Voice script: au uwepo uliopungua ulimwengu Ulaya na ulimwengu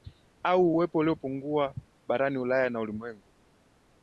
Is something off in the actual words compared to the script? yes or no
yes